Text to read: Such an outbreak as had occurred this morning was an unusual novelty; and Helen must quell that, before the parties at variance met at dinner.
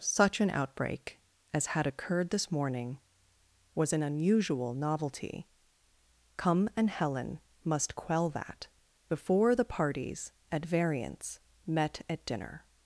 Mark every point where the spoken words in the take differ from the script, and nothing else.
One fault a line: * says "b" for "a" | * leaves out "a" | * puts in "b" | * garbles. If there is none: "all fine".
* puts in "come"